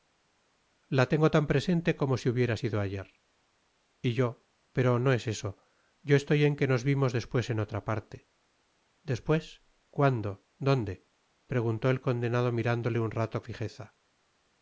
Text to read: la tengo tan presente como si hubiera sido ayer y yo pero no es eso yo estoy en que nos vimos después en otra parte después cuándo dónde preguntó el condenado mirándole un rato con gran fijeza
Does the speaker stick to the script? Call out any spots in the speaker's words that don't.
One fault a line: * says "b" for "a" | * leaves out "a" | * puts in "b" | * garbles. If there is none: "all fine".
* leaves out "con gran"